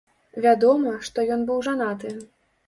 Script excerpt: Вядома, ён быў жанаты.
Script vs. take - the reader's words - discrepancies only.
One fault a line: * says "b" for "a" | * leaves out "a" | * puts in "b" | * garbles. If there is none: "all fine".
* puts in "што"